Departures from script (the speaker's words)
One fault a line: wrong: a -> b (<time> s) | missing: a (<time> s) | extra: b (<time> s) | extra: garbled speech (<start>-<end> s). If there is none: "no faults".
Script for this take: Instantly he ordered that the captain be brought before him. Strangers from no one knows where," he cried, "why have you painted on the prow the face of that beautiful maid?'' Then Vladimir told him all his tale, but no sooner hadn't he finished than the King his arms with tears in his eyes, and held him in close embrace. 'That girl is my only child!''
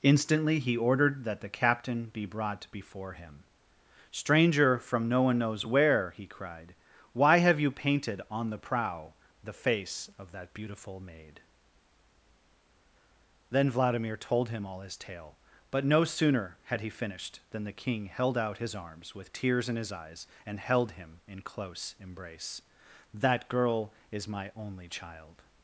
wrong: Strangers -> Stranger (4.1 s)
wrong: hadn't -> had (16.7 s)
extra: held out (18.1 s)